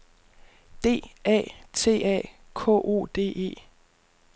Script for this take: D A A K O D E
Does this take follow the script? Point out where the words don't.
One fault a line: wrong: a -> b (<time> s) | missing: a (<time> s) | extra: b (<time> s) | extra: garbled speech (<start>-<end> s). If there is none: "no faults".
extra: T (1.7 s)